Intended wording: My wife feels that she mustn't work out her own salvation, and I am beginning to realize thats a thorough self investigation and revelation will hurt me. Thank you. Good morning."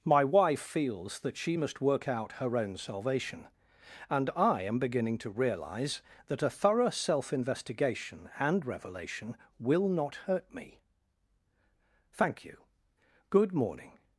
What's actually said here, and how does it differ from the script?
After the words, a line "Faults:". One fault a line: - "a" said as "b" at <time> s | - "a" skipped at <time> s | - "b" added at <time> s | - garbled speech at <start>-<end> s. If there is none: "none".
My wife feels that she must work out her own salvation, and I am beginning to realize that a thorough self investigation and revelation will not hurt me. Thank you. Good morning."
Faults:
- "mustn't" said as "must" at 1.6 s
- "thats" said as "that" at 6.3 s
- "not" added at 9.9 s